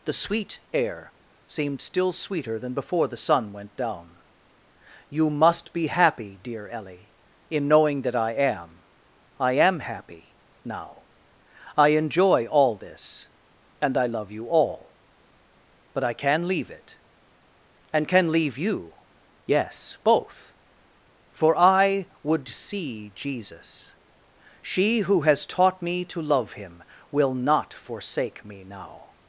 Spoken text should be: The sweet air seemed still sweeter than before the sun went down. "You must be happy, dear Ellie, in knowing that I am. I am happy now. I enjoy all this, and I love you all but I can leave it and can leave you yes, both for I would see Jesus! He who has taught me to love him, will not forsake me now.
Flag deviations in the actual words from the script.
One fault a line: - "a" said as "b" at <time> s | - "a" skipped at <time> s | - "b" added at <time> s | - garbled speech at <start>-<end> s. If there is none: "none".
- "He" said as "She" at 24.6 s